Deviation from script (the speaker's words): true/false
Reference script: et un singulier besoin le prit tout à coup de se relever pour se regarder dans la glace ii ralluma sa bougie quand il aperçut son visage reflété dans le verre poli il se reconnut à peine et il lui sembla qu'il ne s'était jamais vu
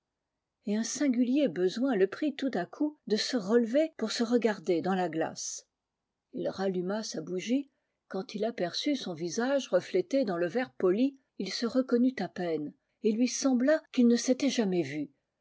false